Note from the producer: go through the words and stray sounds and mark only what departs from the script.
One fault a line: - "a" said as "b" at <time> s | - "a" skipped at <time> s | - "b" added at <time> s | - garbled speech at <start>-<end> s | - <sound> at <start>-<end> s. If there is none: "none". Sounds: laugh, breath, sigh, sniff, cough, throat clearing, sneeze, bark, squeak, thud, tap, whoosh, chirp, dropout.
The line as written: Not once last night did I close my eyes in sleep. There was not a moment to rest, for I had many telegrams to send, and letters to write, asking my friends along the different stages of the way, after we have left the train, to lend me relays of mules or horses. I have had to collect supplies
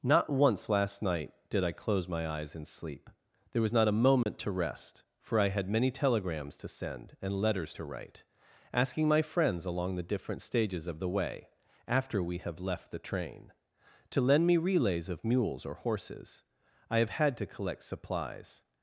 - dropout at 4.2-4.3 s